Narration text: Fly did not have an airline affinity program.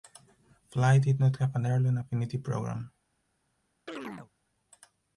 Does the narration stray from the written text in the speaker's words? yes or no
no